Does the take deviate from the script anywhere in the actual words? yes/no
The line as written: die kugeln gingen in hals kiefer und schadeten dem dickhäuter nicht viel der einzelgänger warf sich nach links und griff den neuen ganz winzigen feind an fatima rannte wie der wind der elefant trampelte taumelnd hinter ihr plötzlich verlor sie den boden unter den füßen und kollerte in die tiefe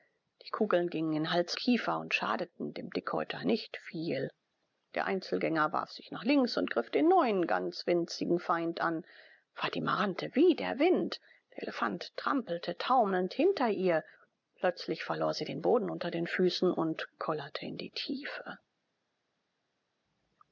no